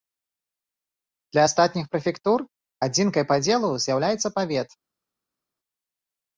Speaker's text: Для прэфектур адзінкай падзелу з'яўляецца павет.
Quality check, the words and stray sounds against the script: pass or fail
fail